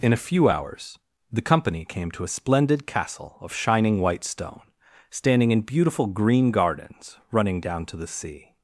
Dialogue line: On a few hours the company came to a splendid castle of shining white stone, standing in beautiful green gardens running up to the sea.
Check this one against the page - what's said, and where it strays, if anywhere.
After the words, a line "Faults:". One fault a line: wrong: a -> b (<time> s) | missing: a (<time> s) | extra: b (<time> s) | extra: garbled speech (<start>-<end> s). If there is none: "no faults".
In a few hours the company came to a splendid castle of shining white stone, standing in beautiful green gardens running down to the sea.
Faults:
wrong: On -> In (0.0 s)
wrong: up -> down (7.6 s)